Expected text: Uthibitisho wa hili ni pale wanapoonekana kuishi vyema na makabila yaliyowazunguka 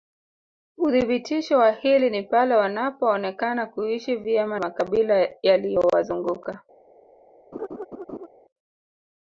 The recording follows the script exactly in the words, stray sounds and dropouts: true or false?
false